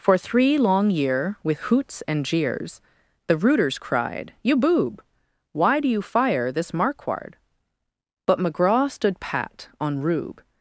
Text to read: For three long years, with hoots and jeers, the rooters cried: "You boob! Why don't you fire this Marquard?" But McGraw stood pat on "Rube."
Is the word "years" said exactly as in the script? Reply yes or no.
no